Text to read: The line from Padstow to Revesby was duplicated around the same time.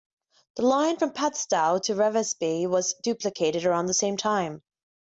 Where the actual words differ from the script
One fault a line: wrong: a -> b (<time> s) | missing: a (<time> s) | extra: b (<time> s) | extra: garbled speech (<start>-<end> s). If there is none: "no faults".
no faults